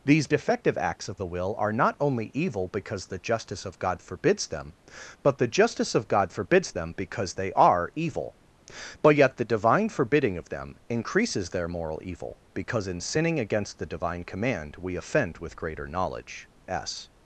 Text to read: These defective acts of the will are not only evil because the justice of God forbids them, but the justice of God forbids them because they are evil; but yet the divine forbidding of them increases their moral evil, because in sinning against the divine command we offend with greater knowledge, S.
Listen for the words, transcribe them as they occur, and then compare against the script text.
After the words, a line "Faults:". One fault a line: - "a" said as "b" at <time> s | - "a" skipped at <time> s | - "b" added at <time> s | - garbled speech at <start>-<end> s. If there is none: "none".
These defective acts of the will are not only evil because the justice of God forbids them, but the justice of God forbids them because they are evil; but yet the divine forbidding of them increases their moral evil, because in sinning against the divine command we offend with greater knowledge, S.
Faults:
none